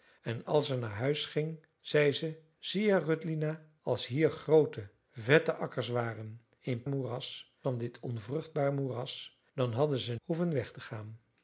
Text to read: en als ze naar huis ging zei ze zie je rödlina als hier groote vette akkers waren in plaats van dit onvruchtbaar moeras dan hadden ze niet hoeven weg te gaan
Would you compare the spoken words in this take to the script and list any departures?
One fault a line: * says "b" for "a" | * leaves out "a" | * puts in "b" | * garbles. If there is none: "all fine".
* says "moeras" for "plaats"
* leaves out "niet"